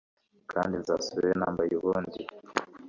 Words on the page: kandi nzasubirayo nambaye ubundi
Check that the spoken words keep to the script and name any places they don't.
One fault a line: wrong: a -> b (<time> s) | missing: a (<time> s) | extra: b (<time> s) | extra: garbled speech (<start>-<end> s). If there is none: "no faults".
no faults